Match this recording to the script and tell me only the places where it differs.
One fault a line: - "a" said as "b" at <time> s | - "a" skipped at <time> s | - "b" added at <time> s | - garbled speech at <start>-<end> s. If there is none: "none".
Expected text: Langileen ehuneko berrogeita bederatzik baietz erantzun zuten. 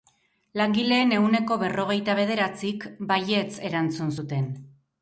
none